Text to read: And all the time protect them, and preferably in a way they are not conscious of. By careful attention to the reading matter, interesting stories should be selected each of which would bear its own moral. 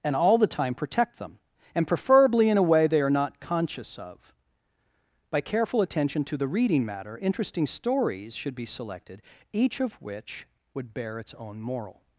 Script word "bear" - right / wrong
right